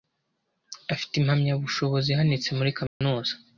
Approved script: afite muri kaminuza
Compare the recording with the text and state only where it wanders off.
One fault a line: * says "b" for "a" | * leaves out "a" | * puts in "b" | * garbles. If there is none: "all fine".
* puts in "impamyabushobozi ihanitse"